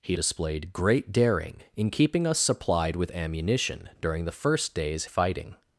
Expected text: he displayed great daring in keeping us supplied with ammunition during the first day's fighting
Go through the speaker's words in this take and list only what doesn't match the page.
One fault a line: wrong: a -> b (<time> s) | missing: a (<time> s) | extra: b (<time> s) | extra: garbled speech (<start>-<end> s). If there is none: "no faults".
no faults